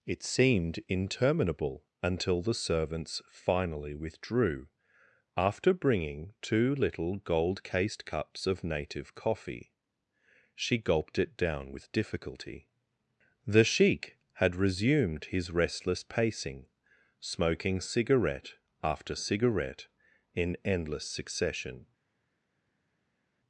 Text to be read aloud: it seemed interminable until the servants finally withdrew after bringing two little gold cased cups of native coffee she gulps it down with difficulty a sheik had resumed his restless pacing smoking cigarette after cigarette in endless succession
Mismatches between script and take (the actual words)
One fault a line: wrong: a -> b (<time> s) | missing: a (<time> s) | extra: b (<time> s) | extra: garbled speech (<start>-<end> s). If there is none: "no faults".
wrong: gulps -> gulped (10.8 s)
wrong: a -> the (13.4 s)